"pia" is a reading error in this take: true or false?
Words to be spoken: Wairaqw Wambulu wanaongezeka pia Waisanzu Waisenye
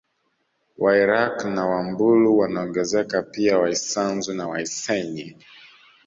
false